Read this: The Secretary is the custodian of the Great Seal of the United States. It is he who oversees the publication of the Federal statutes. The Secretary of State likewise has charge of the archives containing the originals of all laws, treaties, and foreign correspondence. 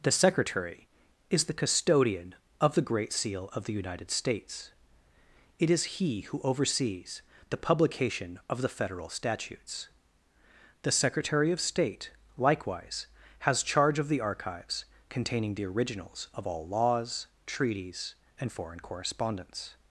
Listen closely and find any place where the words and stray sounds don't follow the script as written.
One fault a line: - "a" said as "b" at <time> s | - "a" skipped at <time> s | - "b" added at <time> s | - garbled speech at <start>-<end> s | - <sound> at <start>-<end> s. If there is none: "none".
none